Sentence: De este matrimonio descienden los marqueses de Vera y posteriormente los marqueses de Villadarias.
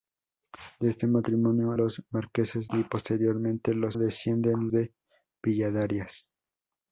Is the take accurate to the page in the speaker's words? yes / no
no